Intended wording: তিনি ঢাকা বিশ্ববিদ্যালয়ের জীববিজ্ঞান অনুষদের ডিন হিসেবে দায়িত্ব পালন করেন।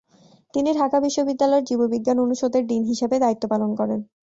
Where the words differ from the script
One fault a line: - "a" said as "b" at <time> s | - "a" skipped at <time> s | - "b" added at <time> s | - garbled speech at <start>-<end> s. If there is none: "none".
none